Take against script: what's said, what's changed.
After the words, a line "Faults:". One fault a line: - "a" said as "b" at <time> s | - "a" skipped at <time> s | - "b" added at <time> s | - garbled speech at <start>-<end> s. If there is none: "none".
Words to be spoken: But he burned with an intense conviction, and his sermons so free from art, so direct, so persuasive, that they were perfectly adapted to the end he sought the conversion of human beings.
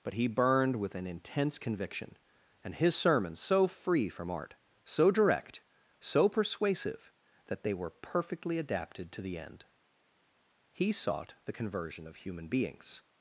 But he burned with an intense conviction, and his sermons so free from art, so direct, so persuasive, that they were perfectly adapted to the end he sought the conversion of human beings.
Faults:
none